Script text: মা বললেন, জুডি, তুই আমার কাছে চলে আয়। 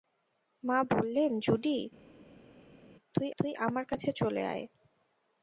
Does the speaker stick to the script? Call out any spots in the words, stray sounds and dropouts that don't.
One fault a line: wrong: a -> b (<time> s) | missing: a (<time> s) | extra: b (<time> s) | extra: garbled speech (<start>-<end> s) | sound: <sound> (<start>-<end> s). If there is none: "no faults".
extra: তুই (3.4 s)